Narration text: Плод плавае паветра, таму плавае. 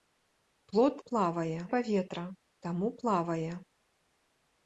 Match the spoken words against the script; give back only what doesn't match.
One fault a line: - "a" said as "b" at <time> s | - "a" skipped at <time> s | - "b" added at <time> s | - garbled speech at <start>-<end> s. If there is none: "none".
none